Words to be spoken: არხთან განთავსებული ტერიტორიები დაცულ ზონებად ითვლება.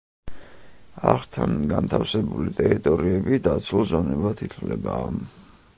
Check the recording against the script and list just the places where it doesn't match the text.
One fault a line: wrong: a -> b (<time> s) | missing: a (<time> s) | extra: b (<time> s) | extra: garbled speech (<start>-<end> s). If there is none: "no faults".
no faults